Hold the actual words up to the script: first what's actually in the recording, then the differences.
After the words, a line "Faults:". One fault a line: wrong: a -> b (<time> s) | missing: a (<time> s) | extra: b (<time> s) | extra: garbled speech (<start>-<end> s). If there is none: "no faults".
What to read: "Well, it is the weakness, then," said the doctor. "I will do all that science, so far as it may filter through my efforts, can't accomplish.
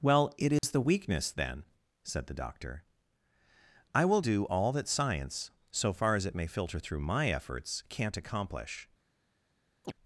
"Well, it is the weakness, then," said the doctor. "I will do all that science, so far as it may filter through my efforts, can't accomplish.
Faults:
no faults